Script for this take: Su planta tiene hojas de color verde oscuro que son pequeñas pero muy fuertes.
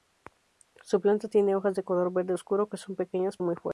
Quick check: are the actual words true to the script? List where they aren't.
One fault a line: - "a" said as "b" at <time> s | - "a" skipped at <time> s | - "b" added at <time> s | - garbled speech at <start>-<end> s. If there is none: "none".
- "pero" skipped at 3.4 s